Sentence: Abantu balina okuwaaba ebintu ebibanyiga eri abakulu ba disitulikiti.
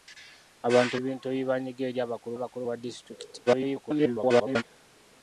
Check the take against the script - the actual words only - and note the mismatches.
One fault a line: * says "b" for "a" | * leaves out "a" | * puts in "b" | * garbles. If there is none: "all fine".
* leaves out "balina okuwaaba"
* puts in "abakulu"
* garbles